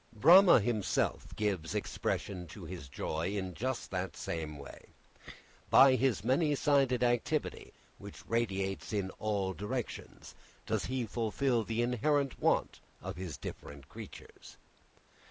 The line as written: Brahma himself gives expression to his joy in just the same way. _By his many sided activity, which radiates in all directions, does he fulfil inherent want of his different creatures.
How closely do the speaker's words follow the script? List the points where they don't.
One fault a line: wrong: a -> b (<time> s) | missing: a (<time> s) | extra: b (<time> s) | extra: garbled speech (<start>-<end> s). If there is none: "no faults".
extra: the (11.6 s)